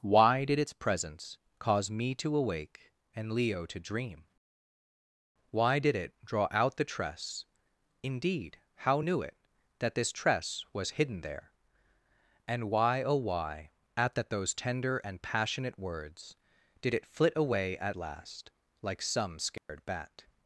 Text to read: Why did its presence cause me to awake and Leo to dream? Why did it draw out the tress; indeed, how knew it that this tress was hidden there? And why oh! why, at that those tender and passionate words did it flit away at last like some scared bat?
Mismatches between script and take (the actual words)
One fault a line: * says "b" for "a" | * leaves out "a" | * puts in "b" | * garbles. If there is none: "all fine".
all fine